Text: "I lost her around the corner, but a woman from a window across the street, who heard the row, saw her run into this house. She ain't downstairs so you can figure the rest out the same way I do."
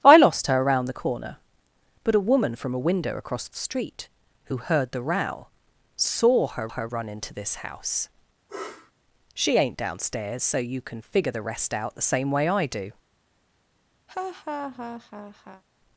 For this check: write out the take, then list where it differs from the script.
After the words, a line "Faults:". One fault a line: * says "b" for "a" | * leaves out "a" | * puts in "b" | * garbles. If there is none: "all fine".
"I lost her around the corner, but a woman from a window across the street, who heard the row, saw her her run into this house. She ain't downstairs so you can figure the rest out the same way I do."
Faults:
* puts in "her"